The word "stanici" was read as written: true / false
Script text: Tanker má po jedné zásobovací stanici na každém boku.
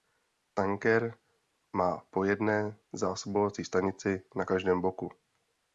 true